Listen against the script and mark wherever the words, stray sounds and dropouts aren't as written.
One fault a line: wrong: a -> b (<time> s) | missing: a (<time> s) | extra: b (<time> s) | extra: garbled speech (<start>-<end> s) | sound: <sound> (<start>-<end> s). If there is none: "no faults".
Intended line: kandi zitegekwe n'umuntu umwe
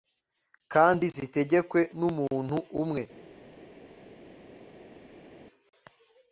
no faults